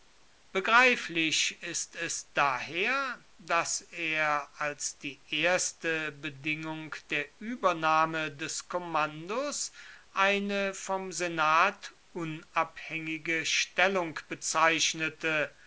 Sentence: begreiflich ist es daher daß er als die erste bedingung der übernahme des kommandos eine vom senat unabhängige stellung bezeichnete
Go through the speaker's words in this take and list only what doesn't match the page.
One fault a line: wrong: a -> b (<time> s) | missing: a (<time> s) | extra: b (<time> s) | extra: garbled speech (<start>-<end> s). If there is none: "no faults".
no faults